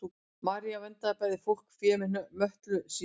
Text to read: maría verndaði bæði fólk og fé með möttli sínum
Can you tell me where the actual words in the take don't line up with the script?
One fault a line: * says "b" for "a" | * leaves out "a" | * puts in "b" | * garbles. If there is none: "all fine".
all fine